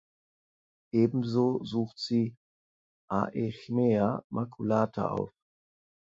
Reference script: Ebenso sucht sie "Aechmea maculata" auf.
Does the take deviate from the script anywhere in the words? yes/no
no